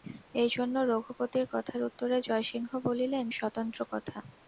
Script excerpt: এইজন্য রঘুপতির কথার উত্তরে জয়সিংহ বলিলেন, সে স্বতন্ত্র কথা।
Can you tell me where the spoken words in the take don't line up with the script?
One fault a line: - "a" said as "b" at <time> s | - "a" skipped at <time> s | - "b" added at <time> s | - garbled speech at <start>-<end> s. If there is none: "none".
- "সে" skipped at 3.2 s